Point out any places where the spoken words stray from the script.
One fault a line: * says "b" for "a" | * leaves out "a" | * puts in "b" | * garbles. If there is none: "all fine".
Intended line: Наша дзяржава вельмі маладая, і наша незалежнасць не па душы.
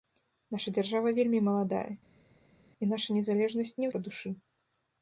all fine